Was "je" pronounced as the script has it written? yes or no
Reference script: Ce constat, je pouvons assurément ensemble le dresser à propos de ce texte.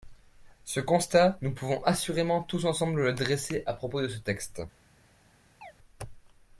no